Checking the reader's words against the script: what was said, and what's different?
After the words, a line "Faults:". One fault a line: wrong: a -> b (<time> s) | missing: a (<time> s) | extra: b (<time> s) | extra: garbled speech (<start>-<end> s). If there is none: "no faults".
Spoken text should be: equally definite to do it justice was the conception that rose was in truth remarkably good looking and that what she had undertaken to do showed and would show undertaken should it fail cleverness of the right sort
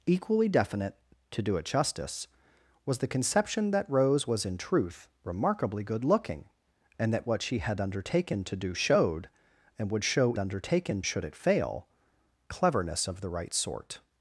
equally definite to do it justice was the conception that rose was in truth remarkably good looking and that what she had undertaken to do showed and would show undertaken should it fail cleverness of the right sort
Faults:
no faults